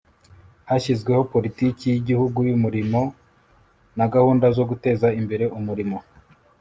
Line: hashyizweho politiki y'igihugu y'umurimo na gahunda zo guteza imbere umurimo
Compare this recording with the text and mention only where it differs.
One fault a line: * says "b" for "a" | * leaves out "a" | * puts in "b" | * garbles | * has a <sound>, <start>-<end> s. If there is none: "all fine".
all fine